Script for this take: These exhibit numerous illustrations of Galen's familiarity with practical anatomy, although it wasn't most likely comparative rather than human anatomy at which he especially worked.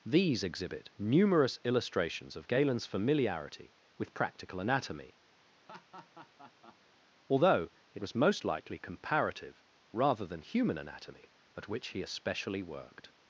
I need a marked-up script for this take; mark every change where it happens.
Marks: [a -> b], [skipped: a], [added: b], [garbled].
These exhibit numerous illustrations of Galen's familiarity with practical anatomy, although it [wasn't -> was] most likely comparative rather than human anatomy at which he especially worked.